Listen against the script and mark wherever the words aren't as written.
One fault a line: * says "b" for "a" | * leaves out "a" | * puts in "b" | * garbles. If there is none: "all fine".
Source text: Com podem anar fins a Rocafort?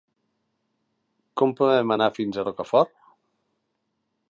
all fine